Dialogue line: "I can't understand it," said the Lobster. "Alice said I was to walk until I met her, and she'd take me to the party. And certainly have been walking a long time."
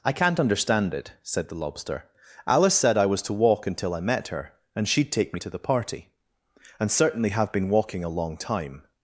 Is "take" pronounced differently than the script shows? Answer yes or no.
no